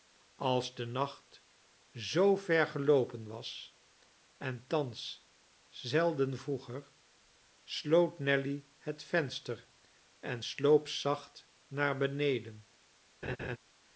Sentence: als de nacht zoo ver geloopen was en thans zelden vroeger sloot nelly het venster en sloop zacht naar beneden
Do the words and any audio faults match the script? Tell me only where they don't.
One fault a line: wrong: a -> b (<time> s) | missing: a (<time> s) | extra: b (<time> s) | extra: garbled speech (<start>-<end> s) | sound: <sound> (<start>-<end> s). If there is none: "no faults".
sound: laugh (13.2-13.6 s)